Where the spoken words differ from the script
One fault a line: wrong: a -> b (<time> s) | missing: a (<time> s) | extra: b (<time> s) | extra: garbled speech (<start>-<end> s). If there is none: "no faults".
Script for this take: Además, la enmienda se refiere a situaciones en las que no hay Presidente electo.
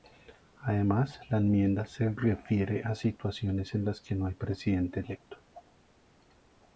no faults